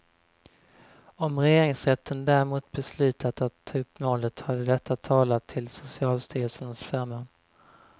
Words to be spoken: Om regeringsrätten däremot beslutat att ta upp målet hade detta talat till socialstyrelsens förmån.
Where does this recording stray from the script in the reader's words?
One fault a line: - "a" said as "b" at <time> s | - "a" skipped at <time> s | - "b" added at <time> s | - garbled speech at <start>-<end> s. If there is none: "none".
none